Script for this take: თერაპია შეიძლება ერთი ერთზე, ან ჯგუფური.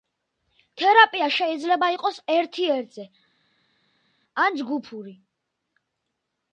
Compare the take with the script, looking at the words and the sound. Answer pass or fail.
fail